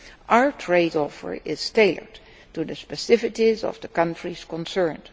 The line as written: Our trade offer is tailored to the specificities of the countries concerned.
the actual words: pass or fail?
pass